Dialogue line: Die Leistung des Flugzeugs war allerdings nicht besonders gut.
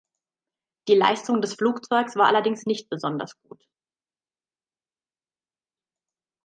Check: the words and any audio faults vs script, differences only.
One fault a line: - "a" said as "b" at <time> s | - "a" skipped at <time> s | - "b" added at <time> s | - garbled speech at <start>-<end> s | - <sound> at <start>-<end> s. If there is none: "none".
none